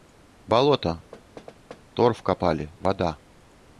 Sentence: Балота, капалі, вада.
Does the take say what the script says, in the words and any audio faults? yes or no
no